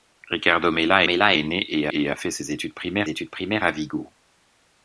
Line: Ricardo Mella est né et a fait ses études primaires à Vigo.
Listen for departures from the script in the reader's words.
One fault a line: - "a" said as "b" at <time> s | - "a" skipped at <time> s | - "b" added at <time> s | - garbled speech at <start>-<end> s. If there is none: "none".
- "Mella" added at 1.0 s
- "et" added at 2.0 s
- "études primaires" added at 3.1 s